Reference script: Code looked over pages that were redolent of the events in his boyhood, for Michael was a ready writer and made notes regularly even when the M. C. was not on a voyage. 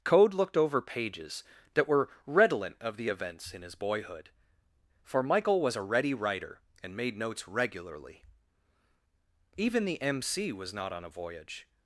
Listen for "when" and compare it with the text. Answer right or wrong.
wrong